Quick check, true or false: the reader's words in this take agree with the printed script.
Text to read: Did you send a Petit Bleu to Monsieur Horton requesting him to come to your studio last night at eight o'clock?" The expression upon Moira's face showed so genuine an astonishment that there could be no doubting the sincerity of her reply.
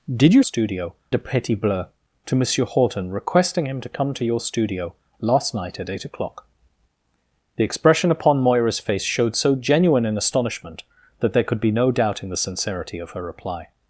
false